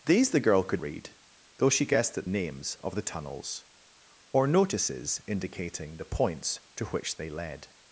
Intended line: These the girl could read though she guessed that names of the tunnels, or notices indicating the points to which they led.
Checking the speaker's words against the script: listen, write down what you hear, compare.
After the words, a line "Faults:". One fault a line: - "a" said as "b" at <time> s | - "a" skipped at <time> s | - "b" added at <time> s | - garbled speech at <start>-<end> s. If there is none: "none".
These the girl could read though she guessed that names of the tunnels, or notices indicating the points to which they led.
Faults:
none